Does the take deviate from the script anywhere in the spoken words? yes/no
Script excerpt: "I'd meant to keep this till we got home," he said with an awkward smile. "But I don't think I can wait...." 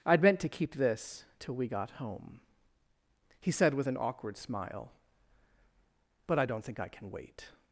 no